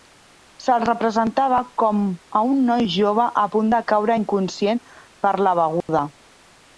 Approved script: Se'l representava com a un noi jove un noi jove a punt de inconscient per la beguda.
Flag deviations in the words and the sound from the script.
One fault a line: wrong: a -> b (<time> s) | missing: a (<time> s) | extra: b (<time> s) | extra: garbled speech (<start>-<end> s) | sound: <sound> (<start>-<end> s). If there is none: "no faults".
missing: un noi jove (3.3 s)
extra: caure (3.9 s)
sound: dropout (5.8-5.9 s)